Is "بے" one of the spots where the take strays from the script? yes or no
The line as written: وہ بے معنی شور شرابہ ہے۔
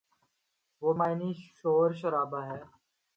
yes